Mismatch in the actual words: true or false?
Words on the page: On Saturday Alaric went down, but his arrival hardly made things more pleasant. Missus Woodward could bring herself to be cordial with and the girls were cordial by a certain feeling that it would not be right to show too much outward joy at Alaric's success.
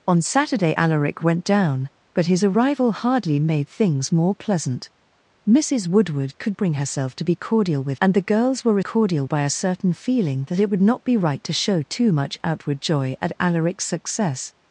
false